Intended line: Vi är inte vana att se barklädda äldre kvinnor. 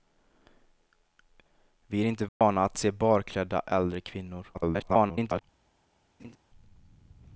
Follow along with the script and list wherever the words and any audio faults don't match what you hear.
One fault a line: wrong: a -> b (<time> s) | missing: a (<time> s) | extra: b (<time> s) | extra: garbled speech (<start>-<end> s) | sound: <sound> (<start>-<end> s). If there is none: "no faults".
sound: dropout (2.3-2.4 s)
extra: garbled speech (4.5-5.4 s)
sound: laugh (6.2-6.4 s)